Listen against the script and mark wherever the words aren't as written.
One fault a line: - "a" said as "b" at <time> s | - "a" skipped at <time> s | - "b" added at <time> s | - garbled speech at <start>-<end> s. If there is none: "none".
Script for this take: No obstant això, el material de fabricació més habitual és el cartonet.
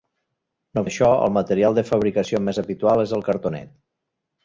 - "obstant" skipped at 0.8 s